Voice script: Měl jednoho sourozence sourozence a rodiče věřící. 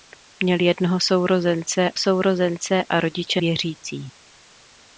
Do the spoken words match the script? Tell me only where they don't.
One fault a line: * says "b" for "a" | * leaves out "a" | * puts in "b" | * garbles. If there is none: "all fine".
all fine